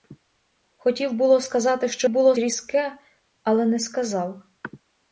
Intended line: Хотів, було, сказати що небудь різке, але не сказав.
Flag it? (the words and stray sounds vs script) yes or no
yes